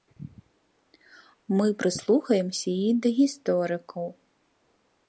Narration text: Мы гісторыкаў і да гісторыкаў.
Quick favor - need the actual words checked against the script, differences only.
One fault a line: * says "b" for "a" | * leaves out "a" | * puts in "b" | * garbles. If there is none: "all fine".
* says "прыслухаемся" for "гісторыкаў"